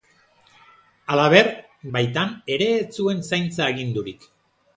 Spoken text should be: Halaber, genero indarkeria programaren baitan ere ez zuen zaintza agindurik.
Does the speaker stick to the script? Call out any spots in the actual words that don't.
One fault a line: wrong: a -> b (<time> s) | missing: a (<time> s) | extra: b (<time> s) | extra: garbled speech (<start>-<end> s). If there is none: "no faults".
missing: genero indarkeria programaren (1.5 s)